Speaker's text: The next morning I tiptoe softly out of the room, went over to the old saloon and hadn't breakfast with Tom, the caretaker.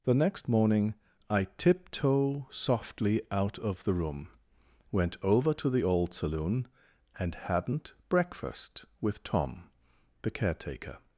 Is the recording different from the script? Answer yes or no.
no